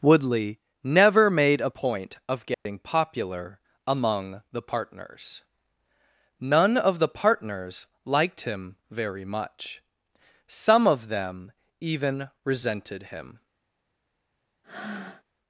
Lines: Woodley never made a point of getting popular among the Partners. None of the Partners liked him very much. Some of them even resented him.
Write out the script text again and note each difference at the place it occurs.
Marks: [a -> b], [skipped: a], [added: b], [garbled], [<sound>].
Woodley never made a point of getting [dropout] popular among the Partners. None of the Partners liked him very much. Some of them even resented him. [breath]